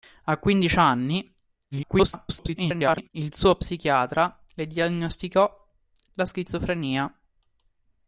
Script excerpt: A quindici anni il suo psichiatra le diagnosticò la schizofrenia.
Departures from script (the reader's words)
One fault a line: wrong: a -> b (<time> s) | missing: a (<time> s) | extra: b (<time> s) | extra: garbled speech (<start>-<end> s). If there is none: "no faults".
extra: garbled speech (1.7-3.1 s)